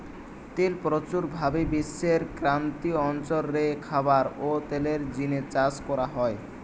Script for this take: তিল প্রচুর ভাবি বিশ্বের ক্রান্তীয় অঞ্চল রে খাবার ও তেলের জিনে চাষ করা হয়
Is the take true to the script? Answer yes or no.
yes